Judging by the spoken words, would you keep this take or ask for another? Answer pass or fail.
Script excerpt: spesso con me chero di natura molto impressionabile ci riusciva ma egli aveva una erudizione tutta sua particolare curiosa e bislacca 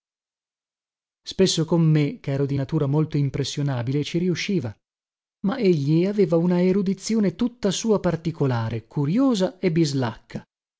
pass